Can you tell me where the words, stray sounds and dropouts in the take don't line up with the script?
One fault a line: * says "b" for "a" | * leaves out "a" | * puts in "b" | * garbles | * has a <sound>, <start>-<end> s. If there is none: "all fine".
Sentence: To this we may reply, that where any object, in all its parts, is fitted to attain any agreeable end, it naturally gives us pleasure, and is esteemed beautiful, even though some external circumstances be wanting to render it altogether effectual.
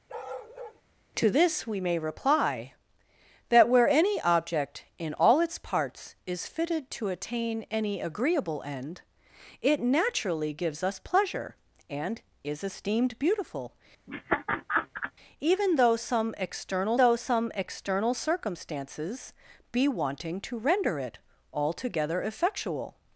* has a bark, 0.1-0.8 s
* has a laugh, 14.1-15.1 s
* puts in "though some external"